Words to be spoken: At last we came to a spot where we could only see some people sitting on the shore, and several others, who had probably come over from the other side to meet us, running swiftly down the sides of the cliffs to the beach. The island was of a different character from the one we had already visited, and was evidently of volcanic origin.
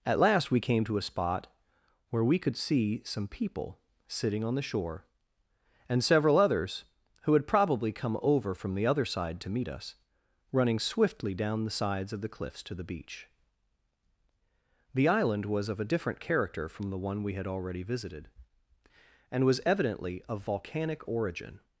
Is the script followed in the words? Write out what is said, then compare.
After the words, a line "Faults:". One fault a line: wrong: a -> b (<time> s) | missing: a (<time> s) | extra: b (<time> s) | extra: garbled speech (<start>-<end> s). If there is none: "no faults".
At last we came to a spot where we could see some people sitting on the shore, and several others, who had probably come over from the other side to meet us, running swiftly down the sides of the cliffs to the beach. The island was of a different character from the one we had already visited, and was evidently of volcanic origin.
Faults:
missing: only (2.6 s)